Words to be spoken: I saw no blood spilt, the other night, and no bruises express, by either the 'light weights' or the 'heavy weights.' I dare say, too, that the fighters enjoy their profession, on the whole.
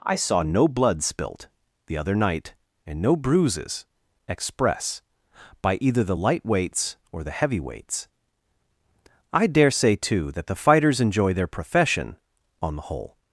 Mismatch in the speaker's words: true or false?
false